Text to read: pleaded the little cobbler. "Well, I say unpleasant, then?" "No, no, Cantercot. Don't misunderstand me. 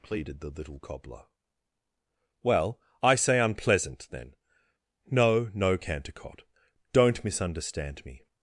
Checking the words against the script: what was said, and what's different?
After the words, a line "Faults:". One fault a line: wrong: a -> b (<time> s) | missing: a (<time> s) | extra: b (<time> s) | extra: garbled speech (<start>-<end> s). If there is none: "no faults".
pleaded the little cobbler. "Well, I say unpleasant, then?" "No, no, Cantercot. Don't misunderstand me.
Faults:
no faults